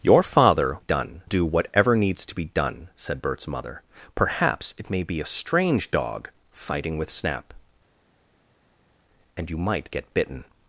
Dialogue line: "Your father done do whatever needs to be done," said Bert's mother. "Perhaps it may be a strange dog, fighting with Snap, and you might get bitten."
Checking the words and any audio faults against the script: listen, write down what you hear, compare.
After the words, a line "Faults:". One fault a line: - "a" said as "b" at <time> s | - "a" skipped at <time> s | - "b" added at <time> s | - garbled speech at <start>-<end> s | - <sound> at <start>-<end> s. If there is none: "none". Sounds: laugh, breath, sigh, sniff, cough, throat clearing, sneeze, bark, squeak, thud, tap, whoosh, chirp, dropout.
"Your father done do whatever needs to be done," said Bert's mother. "Perhaps it may be a strange dog, fighting with Snap, and you might get bitten."
Faults:
none